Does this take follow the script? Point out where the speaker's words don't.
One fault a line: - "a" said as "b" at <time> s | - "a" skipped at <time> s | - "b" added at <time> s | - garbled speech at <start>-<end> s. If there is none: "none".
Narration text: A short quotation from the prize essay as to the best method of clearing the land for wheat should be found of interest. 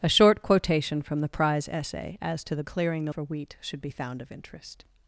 - "best method of" skipped at 2.6 s
- "land" skipped at 3.1 s